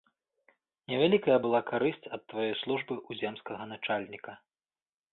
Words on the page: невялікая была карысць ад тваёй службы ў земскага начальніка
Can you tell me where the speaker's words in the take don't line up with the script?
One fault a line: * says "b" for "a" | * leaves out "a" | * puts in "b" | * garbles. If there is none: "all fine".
all fine